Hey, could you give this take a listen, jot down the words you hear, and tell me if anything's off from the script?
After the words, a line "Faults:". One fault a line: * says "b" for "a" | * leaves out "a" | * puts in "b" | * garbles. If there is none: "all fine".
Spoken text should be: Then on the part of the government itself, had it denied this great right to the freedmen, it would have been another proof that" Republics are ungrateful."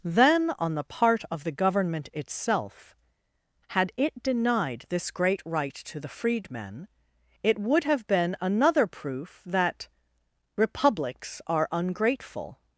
Then on the part of the government itself, had it denied this great right to the freedmen, it would have been another proof that" Republics are ungrateful."
Faults:
all fine